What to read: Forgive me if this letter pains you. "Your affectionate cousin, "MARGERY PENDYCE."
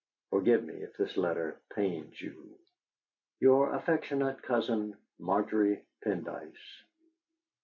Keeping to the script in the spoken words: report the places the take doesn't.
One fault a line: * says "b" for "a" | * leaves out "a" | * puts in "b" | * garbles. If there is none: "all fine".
all fine